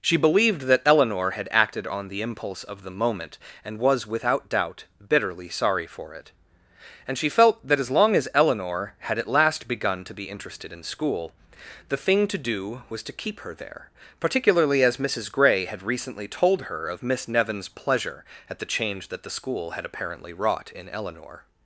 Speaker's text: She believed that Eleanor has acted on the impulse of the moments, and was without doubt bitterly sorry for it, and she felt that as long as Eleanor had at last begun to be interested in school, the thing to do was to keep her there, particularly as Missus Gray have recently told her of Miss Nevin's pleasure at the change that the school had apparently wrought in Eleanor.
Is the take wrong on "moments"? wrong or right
wrong